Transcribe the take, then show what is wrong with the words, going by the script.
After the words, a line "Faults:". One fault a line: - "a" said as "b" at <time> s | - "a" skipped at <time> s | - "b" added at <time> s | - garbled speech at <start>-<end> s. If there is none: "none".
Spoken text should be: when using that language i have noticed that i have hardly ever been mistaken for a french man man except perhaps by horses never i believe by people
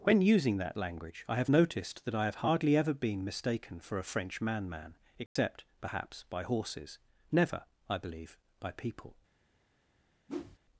when using that language i have noticed that i have hardly ever been mistaken for a french man man except perhaps by horses never i believe by people
Faults:
none